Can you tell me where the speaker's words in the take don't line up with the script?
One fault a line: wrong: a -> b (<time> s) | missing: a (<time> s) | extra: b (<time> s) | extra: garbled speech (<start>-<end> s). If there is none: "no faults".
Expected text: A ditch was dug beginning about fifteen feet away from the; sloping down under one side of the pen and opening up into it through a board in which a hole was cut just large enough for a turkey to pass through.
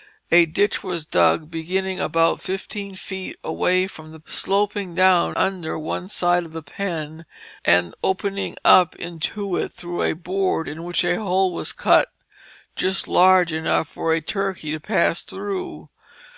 no faults